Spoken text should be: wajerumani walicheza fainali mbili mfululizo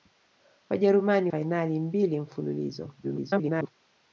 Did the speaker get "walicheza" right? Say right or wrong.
wrong